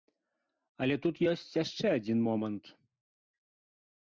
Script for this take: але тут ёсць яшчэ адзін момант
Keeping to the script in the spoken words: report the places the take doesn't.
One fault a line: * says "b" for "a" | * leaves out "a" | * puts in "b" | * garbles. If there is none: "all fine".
all fine